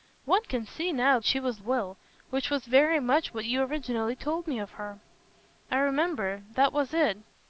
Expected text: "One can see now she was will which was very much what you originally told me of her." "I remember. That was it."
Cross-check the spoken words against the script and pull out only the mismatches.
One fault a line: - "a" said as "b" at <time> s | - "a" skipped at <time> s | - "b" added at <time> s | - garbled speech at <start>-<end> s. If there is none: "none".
none